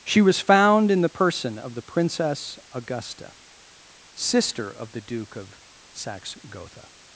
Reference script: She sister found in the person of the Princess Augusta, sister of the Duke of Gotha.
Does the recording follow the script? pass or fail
fail